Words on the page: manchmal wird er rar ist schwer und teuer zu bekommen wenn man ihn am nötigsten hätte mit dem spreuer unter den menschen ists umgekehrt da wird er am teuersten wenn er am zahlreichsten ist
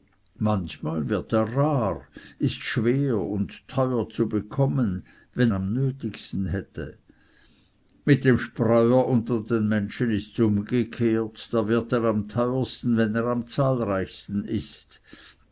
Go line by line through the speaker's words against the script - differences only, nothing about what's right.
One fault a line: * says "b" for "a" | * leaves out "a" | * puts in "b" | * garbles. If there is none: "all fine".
* leaves out "man ihn"